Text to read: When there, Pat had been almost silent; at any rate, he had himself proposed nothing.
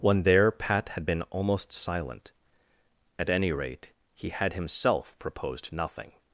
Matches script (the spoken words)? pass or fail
pass